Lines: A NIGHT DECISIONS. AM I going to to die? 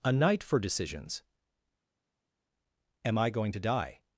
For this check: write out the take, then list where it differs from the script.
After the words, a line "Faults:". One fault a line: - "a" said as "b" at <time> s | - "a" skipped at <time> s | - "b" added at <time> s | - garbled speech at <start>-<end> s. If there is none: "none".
A NIGHT FOR DECISIONS. AM I going to die?
Faults:
- "FOR" added at 0.4 s
- "to" skipped at 3.6 s